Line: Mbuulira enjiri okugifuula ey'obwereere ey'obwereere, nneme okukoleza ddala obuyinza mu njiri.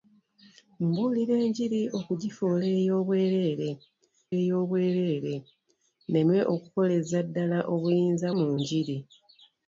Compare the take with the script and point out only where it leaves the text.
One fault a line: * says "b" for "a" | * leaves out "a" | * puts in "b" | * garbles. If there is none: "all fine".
all fine